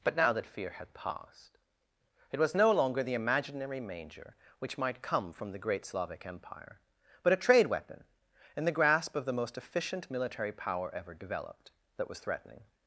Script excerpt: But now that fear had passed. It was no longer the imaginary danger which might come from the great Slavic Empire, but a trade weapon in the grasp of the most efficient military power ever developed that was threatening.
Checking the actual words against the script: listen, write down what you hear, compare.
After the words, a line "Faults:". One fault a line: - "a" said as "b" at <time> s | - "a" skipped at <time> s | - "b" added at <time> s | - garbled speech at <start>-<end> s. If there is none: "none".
But now that fear had passed. It was no longer the imaginary manger which might come from the great Slavic Empire, but a trade weapon in the grasp of the most efficient military power ever developed that was threatening.
Faults:
- "danger" said as "manger" at 3.8 s